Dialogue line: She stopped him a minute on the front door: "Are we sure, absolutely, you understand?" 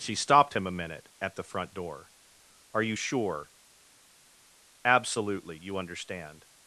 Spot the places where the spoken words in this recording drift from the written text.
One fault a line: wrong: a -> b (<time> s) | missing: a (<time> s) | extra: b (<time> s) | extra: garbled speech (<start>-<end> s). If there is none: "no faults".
wrong: on -> at (1.2 s)
wrong: we -> you (2.8 s)